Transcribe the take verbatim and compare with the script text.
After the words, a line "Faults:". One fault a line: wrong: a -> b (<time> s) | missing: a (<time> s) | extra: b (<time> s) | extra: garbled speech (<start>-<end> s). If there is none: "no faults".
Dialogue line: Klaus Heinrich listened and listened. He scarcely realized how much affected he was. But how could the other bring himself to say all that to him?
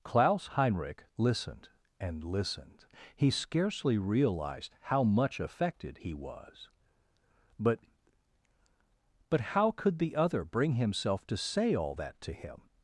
Klaus Heinrich listened and listened. He scarcely realized how much affected he was. But But how could the other bring himself to say all that to him?
Faults:
extra: But (9.3 s)